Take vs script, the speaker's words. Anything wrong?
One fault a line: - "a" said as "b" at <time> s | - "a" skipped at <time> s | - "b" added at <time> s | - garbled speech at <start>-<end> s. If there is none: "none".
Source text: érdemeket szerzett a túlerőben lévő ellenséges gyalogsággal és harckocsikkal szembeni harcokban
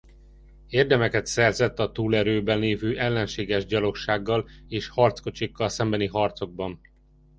none